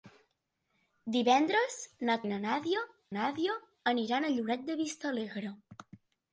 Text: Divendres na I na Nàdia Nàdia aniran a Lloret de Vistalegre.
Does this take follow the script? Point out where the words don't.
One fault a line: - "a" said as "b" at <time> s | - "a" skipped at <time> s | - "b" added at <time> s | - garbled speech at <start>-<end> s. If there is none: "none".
none